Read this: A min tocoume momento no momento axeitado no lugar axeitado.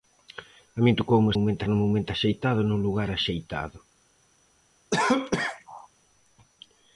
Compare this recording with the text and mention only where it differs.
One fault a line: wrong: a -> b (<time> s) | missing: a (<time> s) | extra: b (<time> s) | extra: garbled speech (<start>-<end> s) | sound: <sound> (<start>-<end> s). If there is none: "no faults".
sound: cough (4.9-5.9 s)